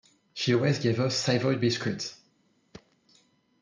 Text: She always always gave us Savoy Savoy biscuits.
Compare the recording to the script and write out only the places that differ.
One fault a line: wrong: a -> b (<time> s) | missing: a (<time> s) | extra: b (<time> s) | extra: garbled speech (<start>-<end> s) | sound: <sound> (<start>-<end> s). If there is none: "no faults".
missing: always (0.8 s)
missing: Savoy (1.6 s)
sound: thud (2.7-3.0 s)